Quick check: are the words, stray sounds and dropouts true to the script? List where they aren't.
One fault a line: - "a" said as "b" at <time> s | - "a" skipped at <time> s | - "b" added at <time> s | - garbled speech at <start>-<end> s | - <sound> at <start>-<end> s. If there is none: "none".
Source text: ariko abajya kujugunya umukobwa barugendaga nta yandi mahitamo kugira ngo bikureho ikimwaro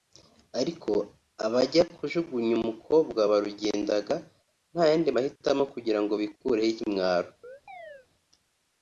- chirp at 7.4-8.1 s